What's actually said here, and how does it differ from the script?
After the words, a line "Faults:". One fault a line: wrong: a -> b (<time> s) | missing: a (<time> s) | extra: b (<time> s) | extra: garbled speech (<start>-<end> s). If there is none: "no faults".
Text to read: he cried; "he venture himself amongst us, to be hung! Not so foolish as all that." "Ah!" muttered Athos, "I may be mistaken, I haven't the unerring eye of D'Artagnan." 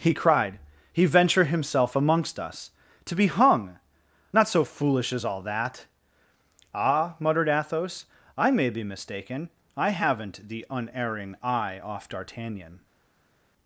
he cried; "he venture himself amongst us, to be hung! Not so foolish as all that." "Ah!" muttered Athos, "I may be mistaken, I haven't the unerring eye off D'Artagnan."
Faults:
wrong: of -> off (11.8 s)